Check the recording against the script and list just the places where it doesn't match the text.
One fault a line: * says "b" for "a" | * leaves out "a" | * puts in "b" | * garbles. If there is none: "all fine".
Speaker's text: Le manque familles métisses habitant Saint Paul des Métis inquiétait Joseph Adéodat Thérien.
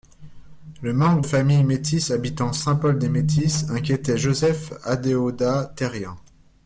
all fine